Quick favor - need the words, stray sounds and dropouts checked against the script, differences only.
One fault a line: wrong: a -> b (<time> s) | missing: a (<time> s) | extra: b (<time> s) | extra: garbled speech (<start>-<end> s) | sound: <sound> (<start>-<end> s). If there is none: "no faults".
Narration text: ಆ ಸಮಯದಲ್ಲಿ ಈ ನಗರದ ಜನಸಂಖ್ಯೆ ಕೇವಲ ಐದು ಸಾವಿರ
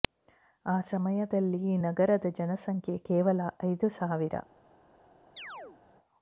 sound: chirp (5.4-5.8 s)